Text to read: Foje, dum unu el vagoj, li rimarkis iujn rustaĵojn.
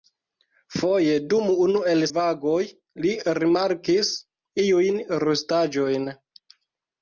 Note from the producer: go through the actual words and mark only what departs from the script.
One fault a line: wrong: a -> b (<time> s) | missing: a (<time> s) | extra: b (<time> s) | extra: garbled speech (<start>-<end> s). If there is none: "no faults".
no faults